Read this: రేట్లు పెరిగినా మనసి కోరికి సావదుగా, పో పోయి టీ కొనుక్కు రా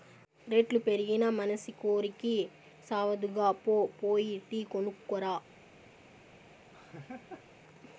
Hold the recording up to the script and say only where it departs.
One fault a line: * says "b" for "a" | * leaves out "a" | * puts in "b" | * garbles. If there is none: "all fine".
all fine